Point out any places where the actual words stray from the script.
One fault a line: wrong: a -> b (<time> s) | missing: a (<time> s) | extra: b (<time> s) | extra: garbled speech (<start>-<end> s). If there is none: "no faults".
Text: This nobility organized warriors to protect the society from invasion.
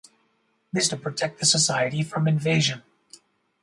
missing: nobility organized warriors (0.9 s)